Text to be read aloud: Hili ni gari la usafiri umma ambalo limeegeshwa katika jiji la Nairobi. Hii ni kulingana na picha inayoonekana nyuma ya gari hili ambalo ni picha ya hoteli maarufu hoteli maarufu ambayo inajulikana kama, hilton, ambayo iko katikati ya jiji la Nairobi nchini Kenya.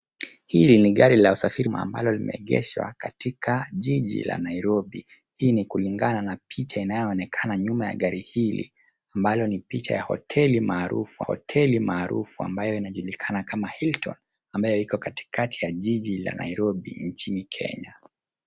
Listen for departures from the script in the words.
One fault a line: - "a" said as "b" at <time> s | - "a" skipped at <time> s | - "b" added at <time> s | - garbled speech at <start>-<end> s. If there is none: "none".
none